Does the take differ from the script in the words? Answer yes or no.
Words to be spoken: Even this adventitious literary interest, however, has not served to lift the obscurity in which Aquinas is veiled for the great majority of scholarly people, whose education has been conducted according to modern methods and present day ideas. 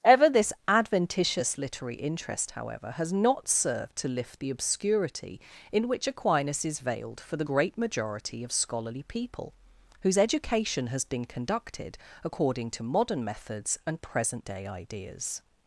yes